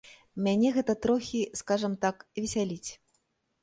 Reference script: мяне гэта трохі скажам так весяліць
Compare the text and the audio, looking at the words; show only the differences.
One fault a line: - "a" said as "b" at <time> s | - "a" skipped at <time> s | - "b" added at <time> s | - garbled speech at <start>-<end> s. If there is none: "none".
none